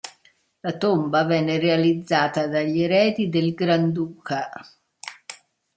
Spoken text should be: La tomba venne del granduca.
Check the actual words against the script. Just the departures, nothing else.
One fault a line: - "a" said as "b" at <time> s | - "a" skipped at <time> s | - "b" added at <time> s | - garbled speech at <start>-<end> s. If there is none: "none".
- "realizzata dagli eredi" added at 1.6 s